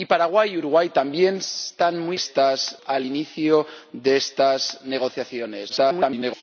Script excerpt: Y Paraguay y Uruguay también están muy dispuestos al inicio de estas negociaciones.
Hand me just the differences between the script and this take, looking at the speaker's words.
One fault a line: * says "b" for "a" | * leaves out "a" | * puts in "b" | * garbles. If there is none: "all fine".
* says "estas" for "dispuestos"
* garbles